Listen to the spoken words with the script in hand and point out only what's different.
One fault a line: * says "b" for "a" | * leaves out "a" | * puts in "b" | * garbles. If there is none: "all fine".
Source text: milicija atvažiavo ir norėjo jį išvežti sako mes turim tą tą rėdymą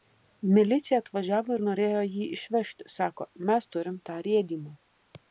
* leaves out "tą"